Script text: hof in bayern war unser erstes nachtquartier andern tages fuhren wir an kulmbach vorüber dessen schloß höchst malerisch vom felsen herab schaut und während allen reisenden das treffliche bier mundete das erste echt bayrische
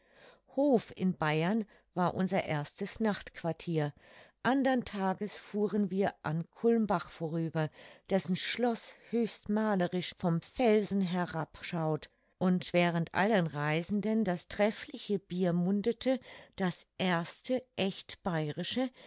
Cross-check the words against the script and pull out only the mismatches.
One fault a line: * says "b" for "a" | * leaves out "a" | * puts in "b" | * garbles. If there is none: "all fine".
all fine